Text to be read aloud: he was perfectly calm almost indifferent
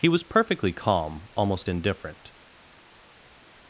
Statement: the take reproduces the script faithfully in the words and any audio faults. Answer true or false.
true